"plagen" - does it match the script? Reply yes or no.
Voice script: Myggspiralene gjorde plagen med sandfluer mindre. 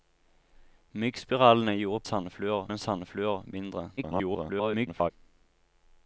no